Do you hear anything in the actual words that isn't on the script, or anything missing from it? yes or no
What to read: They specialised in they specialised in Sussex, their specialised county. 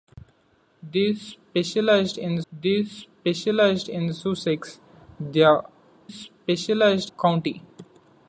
no